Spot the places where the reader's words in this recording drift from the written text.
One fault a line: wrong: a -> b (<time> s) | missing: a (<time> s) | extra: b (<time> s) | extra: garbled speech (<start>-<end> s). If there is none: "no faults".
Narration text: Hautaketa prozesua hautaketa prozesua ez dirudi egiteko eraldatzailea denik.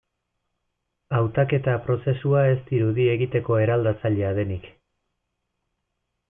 missing: hautaketa prozesua (2.4 s)